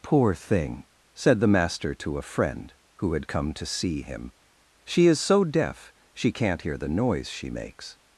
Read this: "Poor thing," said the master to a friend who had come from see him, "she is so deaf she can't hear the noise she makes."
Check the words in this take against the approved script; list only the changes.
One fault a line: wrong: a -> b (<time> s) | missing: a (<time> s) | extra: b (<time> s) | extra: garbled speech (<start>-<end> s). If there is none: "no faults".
wrong: from -> to (3.5 s)